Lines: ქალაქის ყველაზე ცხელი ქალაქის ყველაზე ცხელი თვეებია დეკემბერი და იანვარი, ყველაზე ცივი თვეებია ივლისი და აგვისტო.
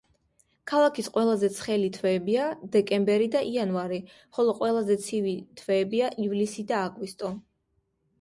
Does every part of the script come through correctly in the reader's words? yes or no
no